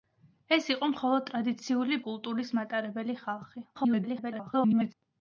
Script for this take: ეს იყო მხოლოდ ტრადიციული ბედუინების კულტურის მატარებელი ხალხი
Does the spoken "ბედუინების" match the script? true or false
false